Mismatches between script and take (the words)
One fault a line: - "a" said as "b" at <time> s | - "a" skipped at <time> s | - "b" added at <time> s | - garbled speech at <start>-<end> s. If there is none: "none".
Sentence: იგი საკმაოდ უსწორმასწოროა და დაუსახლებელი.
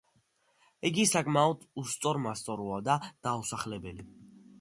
none